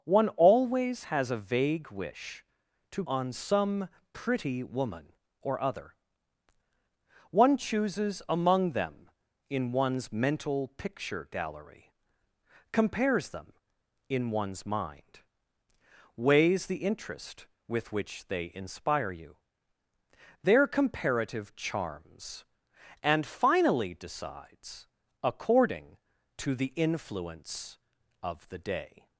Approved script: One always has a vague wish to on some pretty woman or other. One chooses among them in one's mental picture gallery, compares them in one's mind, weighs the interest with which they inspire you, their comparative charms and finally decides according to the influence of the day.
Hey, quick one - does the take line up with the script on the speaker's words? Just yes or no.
yes